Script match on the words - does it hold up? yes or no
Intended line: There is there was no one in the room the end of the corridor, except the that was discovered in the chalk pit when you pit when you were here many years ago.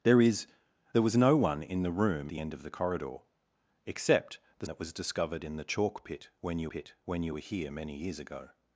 yes